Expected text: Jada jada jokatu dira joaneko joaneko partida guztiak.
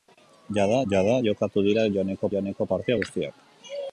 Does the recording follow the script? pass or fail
pass